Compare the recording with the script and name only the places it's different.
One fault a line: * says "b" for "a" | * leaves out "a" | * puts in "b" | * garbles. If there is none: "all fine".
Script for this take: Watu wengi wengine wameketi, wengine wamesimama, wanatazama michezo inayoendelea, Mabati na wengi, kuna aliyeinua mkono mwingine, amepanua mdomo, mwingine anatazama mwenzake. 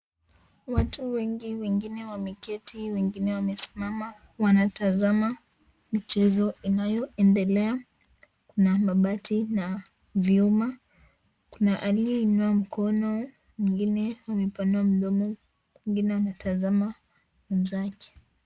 * puts in "Kuna"
* says "vyuma" for "wengi"